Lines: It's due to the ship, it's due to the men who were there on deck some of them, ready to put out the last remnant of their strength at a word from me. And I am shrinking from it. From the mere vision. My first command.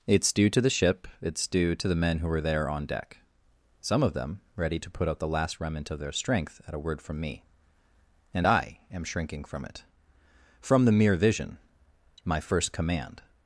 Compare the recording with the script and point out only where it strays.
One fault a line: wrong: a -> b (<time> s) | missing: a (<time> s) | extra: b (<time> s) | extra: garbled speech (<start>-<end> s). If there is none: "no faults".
no faults